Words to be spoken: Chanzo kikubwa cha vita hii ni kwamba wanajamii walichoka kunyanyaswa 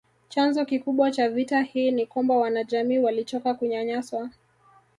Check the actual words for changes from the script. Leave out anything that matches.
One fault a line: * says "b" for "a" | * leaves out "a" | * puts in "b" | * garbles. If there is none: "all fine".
all fine